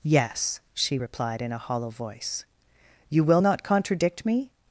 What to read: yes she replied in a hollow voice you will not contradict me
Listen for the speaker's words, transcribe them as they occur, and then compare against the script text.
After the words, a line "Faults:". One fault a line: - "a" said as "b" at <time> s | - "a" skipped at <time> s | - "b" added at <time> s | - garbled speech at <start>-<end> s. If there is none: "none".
yes she replied in a hollow voice you will not contradict me
Faults:
none